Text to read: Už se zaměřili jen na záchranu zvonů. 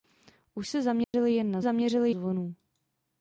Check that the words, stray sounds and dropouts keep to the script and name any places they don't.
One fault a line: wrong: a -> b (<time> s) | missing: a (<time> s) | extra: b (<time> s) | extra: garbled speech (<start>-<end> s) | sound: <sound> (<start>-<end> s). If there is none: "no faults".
sound: dropout (1.0-1.1 s)
wrong: záchranu -> zaměřili (1.6 s)